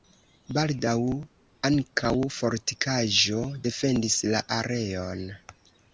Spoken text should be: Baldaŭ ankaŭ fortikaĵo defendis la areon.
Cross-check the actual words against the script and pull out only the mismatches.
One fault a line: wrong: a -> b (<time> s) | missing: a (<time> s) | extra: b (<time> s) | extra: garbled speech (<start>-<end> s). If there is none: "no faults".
no faults